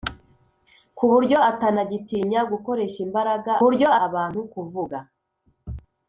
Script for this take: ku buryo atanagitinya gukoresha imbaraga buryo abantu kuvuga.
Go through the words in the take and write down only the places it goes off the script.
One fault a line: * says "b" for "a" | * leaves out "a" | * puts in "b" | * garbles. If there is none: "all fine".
all fine